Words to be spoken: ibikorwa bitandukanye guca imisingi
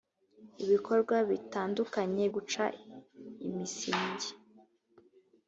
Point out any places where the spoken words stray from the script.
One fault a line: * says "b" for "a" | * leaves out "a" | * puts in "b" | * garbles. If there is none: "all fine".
all fine